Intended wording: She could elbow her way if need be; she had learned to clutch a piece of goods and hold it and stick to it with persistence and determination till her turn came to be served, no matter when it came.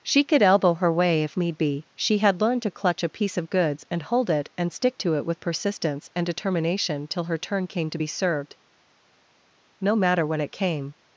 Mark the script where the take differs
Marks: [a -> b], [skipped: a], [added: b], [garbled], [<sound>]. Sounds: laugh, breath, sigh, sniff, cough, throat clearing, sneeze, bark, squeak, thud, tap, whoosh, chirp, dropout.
She could elbow her way if need be; she had learned to clutch a piece of goods and hold it and stick to it with persistence and determination till her turn came to be served, no matter when it came.